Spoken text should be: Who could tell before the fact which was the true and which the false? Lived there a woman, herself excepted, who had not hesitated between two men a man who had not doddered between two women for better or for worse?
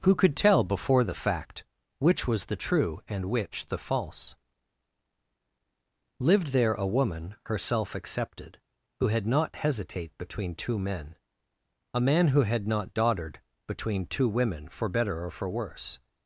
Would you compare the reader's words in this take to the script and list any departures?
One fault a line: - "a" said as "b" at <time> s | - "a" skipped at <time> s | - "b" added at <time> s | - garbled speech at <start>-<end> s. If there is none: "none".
- "hesitated" said as "hesitate" at 9.6 s